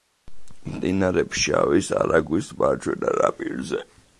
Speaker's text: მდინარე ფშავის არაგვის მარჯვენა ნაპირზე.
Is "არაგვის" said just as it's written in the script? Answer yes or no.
yes